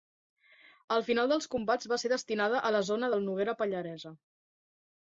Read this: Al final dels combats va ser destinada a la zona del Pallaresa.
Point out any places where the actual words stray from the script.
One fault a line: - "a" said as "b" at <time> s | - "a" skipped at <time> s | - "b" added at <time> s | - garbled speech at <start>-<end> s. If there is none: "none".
- "Noguera" added at 3.3 s